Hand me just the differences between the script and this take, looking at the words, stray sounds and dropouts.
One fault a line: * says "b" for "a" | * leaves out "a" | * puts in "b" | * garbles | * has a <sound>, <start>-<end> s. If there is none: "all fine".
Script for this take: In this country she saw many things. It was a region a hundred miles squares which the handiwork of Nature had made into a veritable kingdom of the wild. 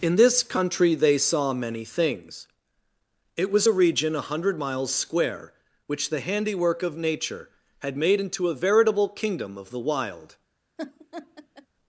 * says "they" for "she"
* says "square" for "squares"
* has a laugh, 10.8-11.7 s